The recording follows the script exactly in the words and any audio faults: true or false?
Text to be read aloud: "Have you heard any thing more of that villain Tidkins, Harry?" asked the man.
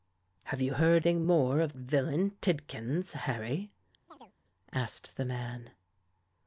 false